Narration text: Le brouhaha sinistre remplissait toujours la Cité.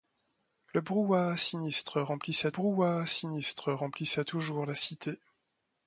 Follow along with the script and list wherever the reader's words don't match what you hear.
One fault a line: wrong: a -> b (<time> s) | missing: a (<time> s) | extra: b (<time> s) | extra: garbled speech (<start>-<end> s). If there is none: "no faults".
extra: brouhaha sinistre remplissait (2.5 s)